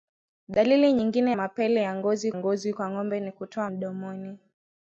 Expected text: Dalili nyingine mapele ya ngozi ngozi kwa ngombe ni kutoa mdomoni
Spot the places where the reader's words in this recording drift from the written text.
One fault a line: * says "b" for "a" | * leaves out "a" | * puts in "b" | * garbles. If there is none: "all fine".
all fine